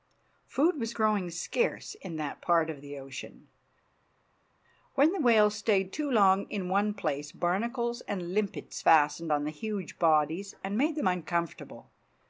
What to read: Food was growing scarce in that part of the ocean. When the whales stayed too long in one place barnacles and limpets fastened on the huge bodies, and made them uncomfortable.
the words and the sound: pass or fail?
pass